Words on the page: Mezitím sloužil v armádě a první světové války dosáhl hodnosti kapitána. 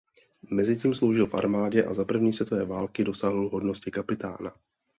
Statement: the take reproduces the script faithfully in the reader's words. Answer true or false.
false